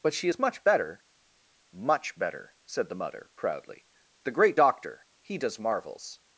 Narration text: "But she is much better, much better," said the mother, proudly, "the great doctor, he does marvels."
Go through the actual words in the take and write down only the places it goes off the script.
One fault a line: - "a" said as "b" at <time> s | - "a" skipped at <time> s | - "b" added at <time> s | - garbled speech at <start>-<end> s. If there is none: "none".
none